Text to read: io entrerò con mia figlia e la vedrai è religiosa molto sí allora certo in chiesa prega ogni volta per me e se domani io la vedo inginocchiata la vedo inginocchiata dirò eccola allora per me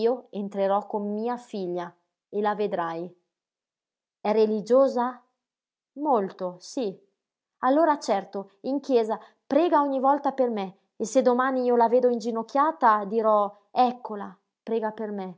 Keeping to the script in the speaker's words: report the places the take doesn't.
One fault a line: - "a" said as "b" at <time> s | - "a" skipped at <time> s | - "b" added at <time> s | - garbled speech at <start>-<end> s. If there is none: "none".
- "la vedo inginocchiata" skipped at 13.1 s
- "allora" said as "prega" at 14.6 s